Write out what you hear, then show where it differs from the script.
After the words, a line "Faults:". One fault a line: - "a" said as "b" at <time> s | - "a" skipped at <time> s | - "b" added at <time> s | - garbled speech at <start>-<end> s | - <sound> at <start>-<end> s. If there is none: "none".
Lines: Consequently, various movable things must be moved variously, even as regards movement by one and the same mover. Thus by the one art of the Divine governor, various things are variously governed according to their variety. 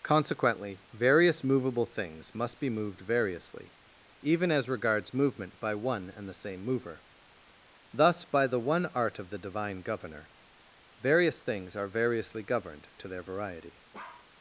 Consequently, various movable things must be moved variously, even as regards movement by one and the same mover. Thus by the one art of the Divine governor, various things are variously governed to their variety.
Faults:
- "according" skipped at 12.9 s
- bark at 13.9-14.3 s